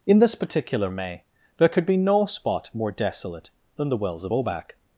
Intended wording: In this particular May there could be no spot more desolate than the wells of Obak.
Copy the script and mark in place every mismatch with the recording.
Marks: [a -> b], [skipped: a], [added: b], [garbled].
In this particular May there could be no spot more desolate than the wells of Obak.